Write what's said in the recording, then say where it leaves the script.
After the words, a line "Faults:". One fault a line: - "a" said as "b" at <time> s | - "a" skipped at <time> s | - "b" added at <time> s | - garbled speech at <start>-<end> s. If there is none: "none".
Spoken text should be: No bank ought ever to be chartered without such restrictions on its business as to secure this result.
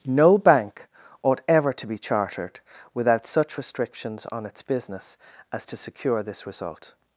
No bank ought ever to be chartered without such restrictions on its business as to secure this result.
Faults:
none